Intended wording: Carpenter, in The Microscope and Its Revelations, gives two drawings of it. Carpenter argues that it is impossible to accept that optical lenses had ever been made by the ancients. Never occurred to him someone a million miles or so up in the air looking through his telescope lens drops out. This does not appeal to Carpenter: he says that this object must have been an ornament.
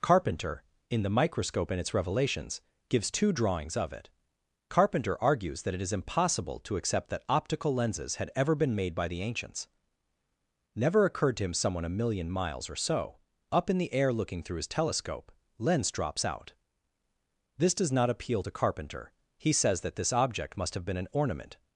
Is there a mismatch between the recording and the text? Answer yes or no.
no